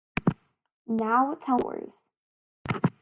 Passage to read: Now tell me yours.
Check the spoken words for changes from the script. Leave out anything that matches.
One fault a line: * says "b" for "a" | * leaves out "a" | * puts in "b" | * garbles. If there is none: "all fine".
* leaves out "me"